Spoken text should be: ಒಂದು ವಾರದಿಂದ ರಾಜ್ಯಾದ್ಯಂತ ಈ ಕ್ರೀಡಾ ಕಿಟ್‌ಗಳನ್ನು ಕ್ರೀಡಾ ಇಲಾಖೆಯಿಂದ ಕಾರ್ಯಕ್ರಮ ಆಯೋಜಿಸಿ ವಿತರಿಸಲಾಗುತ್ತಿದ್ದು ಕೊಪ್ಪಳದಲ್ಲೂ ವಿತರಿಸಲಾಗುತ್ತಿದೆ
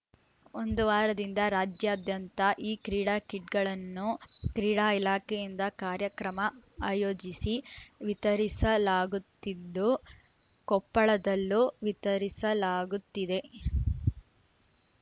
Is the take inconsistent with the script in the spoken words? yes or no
no